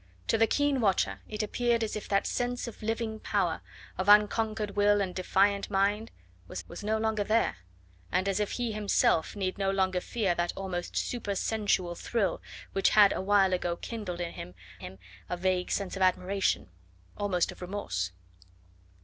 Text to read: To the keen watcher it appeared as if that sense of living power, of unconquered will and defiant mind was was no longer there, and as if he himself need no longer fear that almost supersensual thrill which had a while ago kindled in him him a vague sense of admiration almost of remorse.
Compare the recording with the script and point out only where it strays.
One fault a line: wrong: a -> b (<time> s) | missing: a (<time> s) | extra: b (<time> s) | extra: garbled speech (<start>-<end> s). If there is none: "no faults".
no faults